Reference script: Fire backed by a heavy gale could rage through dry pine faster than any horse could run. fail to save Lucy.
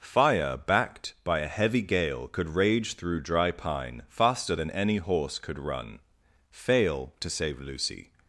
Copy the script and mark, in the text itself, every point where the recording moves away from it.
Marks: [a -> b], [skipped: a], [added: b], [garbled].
Fire backed by a heavy gale could rage through dry pine faster than any horse could run. fail to save Lucy.